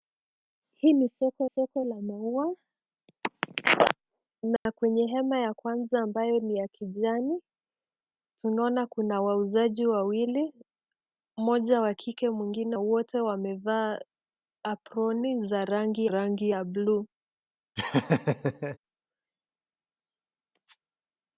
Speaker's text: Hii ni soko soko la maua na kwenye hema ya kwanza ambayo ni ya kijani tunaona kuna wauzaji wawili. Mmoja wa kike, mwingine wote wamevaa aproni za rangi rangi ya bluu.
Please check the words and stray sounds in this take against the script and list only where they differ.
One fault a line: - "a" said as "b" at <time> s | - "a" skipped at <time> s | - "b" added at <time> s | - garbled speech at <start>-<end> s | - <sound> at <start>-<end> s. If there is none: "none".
- dropout at 4.6-4.7 s
- laugh at 17.8-18.8 s